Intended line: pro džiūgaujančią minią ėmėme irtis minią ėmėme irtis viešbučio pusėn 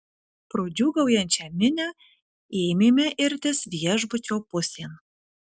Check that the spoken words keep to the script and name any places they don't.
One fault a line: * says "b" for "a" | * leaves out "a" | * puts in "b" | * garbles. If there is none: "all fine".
* leaves out "minią ėmėme irtis"